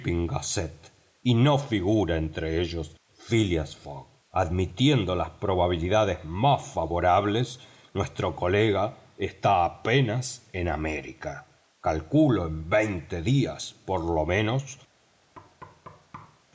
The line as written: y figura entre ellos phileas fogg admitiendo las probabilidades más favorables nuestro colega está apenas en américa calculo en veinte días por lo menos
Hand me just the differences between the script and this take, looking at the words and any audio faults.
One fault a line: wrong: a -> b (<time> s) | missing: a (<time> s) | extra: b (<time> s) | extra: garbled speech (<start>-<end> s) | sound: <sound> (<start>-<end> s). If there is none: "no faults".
extra: no (1.4 s)
sound: thud (15.3-16.4 s)